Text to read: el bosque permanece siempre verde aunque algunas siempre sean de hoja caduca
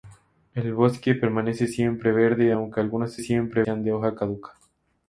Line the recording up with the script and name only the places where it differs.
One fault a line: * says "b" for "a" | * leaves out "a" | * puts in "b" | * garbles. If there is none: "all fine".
all fine